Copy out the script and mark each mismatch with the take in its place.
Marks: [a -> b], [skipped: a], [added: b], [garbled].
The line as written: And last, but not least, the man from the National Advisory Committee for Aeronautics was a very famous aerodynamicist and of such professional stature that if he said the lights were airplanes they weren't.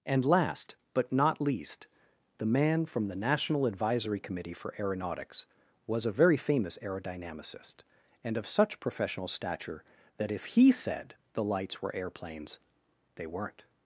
And last, but not least, the man from the National Advisory Committee for Aeronautics was a very famous aerodynamicist and of such professional stature that if he said the lights were airplanes they weren't.